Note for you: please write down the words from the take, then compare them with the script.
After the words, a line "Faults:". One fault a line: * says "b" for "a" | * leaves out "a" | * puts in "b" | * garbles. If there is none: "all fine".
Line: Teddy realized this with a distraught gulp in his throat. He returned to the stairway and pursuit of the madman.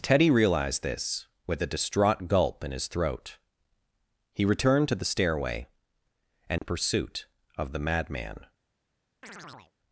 Teddy realized this with a distraught gulp in his throat. He returned to the stairway and pursuit of the madman.
Faults:
all fine